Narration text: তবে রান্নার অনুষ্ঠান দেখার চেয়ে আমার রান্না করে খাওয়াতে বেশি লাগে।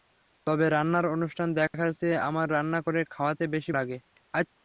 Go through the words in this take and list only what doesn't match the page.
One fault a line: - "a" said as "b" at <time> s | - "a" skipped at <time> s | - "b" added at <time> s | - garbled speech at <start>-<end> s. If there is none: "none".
none